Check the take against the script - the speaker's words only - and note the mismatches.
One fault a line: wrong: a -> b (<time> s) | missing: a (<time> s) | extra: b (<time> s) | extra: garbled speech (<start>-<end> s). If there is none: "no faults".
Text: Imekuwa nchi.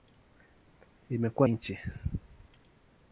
no faults